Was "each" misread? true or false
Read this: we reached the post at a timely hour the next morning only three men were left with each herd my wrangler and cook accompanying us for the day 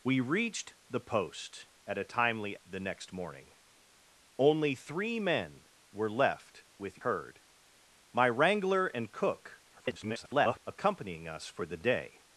true